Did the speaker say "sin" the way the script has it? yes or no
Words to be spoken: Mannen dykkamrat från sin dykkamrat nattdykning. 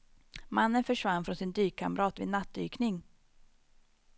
yes